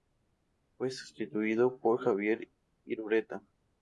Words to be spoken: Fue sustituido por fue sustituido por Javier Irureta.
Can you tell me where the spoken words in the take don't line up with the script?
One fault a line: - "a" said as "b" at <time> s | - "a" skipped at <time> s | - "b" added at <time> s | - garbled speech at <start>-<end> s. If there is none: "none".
- "fue sustituido por" skipped at 2.0 s